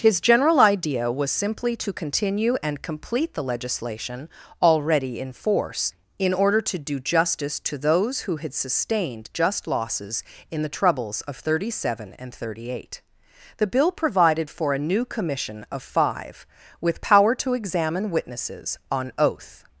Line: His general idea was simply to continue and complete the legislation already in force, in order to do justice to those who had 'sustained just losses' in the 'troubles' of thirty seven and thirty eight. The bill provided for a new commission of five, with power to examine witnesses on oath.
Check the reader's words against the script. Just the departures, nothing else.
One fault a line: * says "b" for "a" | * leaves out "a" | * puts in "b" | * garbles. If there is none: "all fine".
all fine